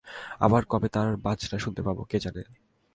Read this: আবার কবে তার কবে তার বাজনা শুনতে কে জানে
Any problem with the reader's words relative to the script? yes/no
yes